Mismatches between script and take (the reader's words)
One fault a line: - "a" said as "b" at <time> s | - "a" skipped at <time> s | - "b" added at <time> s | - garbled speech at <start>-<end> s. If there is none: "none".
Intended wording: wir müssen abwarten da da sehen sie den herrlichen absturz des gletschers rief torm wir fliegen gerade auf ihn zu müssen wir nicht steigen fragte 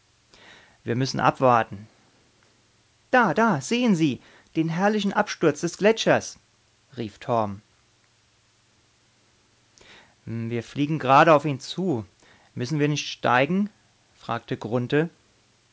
none